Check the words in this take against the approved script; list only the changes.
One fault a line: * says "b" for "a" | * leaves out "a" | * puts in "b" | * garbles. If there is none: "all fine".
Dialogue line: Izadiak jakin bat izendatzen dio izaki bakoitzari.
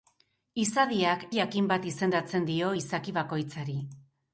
all fine